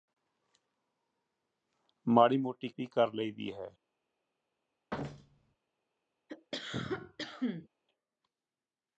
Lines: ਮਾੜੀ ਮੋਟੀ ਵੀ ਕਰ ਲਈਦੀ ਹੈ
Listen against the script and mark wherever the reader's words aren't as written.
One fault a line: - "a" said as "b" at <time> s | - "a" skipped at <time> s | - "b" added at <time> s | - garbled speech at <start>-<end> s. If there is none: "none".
none